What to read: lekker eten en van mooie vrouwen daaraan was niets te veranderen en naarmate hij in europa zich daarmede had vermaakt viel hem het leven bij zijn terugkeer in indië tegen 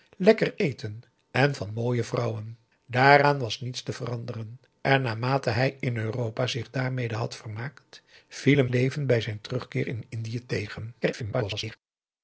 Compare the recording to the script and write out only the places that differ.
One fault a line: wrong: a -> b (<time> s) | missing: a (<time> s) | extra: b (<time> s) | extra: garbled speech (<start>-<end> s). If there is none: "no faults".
missing: het (8.7 s)
extra: garbled speech (11.0-11.8 s)